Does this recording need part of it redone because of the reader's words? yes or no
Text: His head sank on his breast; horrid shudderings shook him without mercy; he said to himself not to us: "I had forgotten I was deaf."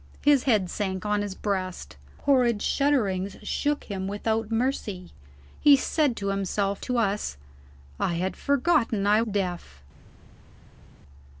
yes